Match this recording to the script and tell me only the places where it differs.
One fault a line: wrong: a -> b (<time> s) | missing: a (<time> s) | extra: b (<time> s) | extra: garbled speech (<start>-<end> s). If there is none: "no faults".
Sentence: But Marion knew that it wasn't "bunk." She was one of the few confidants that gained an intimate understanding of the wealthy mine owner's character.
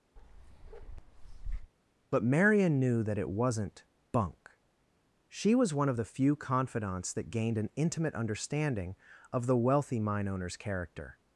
no faults